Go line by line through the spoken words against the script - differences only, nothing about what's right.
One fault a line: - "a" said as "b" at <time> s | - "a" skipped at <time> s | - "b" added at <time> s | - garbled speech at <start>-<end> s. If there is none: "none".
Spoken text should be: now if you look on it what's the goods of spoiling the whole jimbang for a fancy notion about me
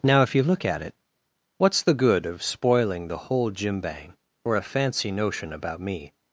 - "on" said as "at" at 0.7 s
- "goods" said as "good" at 1.9 s